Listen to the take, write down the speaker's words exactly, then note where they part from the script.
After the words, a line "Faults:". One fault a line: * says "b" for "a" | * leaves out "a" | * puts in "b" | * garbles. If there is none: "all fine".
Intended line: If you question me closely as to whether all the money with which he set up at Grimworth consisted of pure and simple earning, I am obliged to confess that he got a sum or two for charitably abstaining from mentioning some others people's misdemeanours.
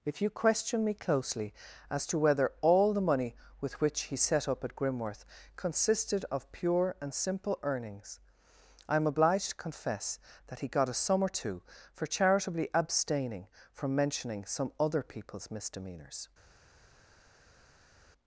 If you question me closely as to whether all the money with which he set up at Grimworth consisted of pure and simple earnings, I am obliged to confess that he got a sum or two for charitably abstaining from mentioning some other people's misdemeanours.
Faults:
* says "earnings" for "earning"
* says "other" for "others"